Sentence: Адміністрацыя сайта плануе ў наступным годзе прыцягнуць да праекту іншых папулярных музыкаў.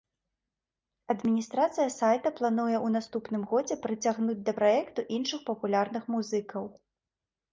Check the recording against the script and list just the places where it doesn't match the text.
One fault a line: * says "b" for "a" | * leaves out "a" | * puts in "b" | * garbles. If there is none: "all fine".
all fine